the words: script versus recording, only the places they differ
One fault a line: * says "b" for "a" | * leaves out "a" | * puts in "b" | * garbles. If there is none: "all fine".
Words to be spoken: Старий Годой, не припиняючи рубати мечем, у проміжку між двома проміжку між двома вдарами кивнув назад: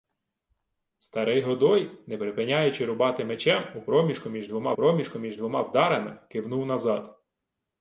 all fine